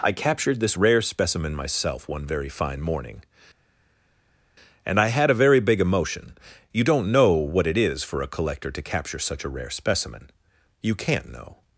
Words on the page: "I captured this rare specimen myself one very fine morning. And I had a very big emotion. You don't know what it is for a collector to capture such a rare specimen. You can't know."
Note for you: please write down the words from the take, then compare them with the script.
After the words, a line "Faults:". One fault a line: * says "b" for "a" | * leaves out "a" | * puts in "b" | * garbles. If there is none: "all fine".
"I captured this rare specimen myself one very fine morning. And I had a very big emotion. You don't know what it is for a collector to capture such a rare specimen. You can't know."
Faults:
all fine